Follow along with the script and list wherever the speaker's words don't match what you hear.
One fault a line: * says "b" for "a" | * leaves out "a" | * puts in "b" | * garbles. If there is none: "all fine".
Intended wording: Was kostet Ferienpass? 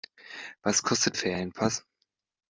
all fine